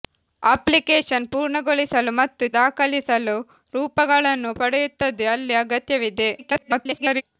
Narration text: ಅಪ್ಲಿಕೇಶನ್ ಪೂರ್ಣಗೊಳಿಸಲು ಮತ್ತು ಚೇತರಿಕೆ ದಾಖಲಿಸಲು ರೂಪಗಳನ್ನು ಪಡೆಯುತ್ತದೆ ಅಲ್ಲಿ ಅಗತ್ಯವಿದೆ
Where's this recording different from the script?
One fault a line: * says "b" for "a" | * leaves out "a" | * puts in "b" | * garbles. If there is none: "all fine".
* leaves out "ಚೇತರಿಕೆ"
* garbles